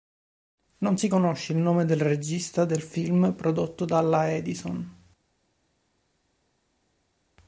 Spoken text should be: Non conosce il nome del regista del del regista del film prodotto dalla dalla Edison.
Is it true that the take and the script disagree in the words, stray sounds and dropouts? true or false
true